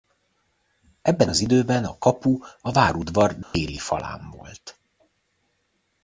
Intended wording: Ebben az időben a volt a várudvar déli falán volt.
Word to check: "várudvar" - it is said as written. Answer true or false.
true